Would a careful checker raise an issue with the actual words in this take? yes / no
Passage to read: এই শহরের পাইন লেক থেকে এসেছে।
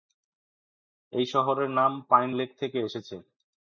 yes